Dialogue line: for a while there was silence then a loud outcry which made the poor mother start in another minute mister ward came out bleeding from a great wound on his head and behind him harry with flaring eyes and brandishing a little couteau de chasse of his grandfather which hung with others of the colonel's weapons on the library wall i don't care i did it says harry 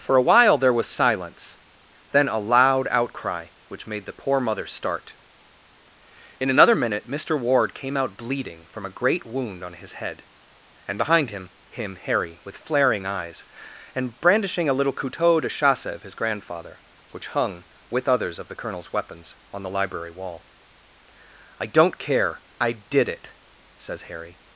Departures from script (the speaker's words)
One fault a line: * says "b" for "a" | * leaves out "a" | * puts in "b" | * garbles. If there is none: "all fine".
* puts in "him"